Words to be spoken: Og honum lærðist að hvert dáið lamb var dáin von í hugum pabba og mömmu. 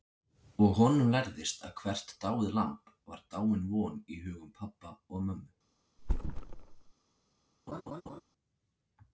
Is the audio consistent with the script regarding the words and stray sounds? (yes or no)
no